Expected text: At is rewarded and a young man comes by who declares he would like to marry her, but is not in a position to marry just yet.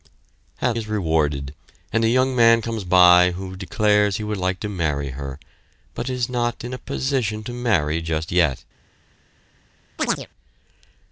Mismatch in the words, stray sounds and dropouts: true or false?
true